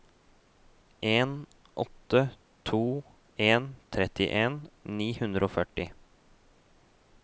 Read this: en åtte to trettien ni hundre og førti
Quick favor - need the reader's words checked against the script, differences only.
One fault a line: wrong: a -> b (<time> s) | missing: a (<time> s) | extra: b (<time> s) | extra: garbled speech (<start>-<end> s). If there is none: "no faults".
extra: en (3.4 s)